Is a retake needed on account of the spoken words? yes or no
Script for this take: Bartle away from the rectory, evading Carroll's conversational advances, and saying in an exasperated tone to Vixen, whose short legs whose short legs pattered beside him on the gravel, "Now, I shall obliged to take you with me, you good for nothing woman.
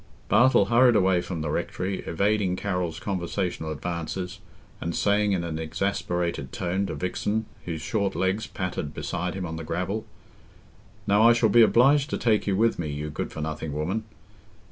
yes